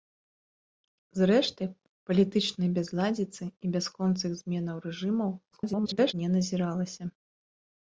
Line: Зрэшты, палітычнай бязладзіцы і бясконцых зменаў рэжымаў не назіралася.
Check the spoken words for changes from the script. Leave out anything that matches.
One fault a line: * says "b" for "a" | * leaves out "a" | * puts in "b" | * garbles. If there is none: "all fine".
* garbles